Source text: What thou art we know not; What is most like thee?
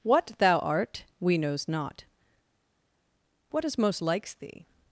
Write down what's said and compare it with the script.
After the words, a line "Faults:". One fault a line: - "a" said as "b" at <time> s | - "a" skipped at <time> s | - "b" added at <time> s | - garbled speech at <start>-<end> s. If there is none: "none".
What thou art we knows not; What is most likes thee?
Faults:
- "know" said as "knows" at 1.4 s
- "like" said as "likes" at 4.0 s